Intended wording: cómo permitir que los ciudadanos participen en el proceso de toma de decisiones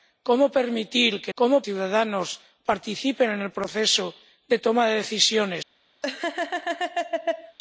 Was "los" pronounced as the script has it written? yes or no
no